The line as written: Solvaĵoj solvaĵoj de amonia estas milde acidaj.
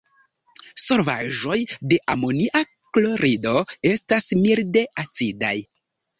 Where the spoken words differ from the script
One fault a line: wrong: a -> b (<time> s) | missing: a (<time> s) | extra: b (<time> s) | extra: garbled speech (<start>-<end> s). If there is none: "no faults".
missing: solvaĵoj (1.6 s)
extra: klorido (3.0 s)